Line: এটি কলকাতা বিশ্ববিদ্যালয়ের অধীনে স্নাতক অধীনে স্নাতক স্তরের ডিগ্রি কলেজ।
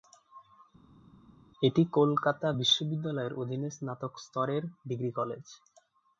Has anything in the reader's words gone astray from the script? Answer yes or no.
yes